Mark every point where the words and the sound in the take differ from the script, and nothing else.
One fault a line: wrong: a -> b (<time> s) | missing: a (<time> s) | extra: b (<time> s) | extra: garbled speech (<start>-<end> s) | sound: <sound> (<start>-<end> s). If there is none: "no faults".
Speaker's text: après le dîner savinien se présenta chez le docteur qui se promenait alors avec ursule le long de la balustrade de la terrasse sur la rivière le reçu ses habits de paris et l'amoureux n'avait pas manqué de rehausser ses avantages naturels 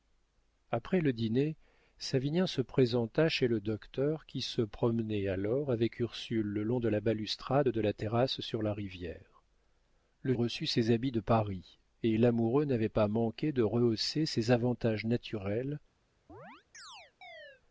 sound: chirp (16.3-17.6 s)